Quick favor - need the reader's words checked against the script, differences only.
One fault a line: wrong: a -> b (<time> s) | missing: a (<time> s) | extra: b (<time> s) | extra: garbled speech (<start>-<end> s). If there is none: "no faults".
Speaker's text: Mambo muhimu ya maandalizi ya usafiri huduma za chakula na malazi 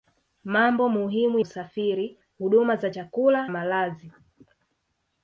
missing: ya maandalizi ya (1.4 s)
missing: na (3.5 s)